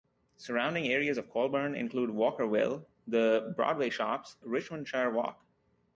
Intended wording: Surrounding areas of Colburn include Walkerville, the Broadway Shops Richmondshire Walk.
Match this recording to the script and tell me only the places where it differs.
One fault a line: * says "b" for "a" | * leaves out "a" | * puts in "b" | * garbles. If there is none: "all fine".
all fine